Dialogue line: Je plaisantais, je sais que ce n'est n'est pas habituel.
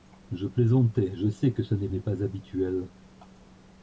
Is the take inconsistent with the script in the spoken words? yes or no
no